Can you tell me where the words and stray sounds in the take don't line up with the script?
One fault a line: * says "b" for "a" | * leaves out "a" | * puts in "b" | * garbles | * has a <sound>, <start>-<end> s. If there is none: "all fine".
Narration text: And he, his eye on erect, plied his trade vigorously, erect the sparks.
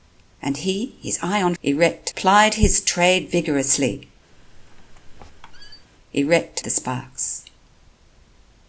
* has a squeak, 4.3-5.9 s